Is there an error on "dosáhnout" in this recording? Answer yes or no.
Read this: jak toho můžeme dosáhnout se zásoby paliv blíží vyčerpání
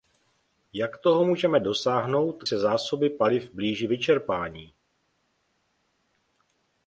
no